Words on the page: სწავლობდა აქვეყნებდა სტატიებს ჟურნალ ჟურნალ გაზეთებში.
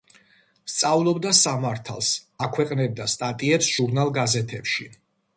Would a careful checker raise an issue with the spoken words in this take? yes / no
yes